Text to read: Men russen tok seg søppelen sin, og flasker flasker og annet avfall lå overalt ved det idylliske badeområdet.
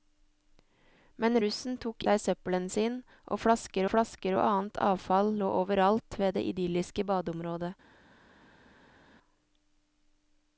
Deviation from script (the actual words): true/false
false